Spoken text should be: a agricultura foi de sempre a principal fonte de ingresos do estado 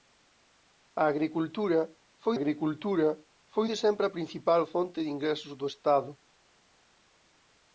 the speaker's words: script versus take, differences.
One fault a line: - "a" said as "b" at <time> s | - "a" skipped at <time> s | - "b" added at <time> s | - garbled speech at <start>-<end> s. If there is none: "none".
- "agricultura foi" added at 2.4 s